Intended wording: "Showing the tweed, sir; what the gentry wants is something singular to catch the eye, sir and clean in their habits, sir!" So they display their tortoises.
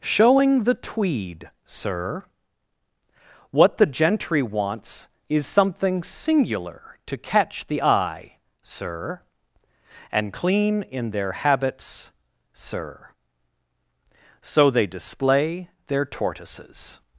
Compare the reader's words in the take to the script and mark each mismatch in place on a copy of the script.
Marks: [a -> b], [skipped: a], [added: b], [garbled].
"Showing the tweed, sir; what the gentry wants is something singular to catch the eye, sir and clean in their habits, sir!" So they display their tortoises.